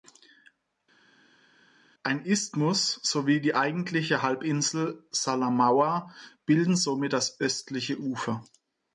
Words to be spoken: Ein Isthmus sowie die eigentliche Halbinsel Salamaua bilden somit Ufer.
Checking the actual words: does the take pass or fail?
fail